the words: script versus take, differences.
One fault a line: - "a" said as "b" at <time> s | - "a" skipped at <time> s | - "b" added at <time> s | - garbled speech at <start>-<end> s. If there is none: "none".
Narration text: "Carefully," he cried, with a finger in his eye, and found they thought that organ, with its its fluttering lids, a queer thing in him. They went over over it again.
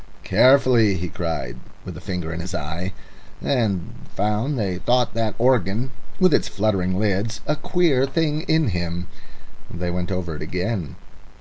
- "its" skipped at 6.5 s
- "over" skipped at 10.3 s